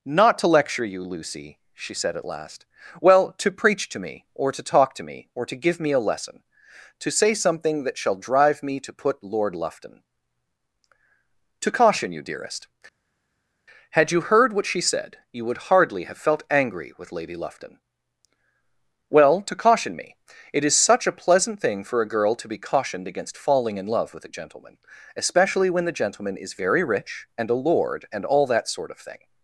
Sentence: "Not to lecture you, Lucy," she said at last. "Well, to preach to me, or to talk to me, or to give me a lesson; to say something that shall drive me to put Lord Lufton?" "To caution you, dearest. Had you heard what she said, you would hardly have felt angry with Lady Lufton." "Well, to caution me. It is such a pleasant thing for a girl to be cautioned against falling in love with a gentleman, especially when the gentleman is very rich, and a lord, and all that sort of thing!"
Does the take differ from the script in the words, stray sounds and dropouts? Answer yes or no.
no